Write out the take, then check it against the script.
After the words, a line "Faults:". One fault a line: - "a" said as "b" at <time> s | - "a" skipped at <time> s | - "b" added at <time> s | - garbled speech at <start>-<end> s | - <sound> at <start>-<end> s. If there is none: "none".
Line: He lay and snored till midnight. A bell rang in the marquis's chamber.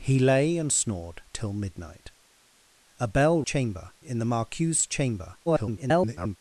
He lay and snored till midnight. A bell chamber in the marquis's chamber. [garbled]
Faults:
- "rang" said as "chamber" at 3.4 s
- garbled speech at 5.5-6.4 s